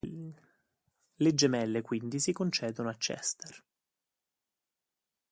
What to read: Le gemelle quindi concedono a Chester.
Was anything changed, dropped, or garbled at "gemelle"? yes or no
no